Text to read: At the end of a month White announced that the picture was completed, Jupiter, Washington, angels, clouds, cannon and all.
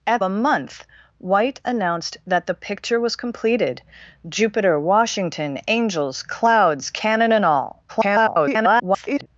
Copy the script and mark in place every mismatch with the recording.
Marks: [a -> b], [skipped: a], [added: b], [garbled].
At [skipped: the end of] a month White announced that the picture was completed, Jupiter, Washington, angels, clouds, cannon and all. [garbled]